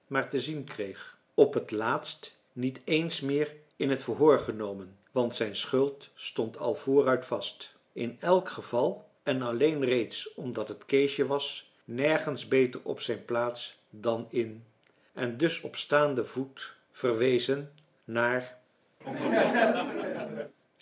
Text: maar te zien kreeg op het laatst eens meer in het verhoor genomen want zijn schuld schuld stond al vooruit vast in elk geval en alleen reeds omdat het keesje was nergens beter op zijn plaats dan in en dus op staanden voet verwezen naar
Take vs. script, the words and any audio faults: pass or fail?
fail